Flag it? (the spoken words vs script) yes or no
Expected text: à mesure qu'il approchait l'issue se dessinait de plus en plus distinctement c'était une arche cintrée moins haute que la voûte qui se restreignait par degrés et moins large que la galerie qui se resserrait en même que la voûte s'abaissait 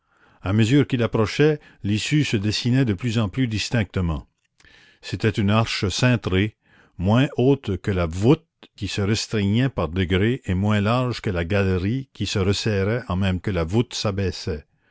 no